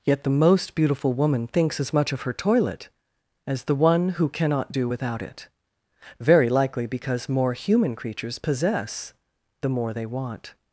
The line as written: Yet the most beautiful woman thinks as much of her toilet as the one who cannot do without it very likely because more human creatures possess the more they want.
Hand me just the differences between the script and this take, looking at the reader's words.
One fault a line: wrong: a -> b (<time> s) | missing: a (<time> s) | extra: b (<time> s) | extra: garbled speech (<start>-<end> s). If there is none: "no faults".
no faults